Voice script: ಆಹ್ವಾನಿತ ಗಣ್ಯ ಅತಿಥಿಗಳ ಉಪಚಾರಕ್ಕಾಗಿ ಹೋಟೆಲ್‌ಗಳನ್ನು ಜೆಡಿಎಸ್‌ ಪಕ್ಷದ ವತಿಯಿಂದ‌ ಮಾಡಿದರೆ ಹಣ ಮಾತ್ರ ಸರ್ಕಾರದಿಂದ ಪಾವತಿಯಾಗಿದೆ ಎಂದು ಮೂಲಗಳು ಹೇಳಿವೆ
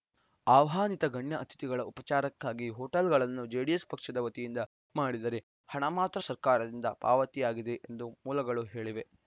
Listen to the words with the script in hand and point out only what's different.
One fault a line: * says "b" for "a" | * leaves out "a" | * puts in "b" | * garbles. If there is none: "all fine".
all fine